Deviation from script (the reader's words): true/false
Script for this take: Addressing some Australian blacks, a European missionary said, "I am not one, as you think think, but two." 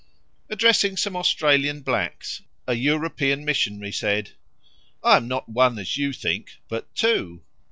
true